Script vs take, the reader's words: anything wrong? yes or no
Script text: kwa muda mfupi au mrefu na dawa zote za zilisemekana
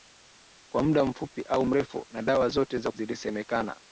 no